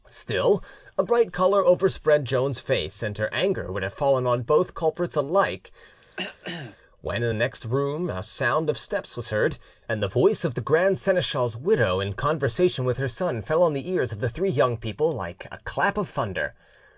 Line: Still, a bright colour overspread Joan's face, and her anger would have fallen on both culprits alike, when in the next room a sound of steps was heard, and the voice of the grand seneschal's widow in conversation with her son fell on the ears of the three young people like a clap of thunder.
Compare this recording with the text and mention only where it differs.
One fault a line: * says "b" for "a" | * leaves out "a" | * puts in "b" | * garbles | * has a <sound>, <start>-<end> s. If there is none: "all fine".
* has a throat clearing, 6.0-6.8 s